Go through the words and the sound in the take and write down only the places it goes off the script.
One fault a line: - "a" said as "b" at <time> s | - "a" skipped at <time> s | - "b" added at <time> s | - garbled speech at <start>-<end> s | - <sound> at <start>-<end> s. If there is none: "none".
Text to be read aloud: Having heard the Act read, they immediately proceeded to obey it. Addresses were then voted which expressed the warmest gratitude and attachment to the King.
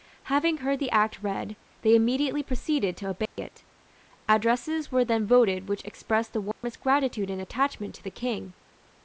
- dropout at 3.3-3.4 s
- dropout at 6.5-6.6 s